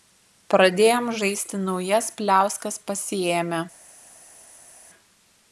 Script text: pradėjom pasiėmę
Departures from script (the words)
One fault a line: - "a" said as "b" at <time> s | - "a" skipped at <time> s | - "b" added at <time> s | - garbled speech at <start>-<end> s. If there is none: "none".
- "žaisti naujas pliauskas" added at 1.2 s